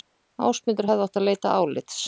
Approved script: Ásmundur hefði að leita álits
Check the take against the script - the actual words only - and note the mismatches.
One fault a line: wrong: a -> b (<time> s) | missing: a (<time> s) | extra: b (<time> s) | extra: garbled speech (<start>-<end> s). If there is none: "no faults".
extra: átt (1.1 s)